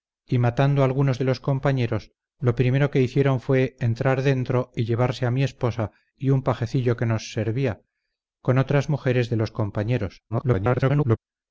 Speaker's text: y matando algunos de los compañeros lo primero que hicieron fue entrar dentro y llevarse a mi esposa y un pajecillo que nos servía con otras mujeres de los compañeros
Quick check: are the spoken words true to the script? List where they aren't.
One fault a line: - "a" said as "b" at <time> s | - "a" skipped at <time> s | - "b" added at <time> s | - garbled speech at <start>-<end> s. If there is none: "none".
- garbled speech at 10.3-11.2 s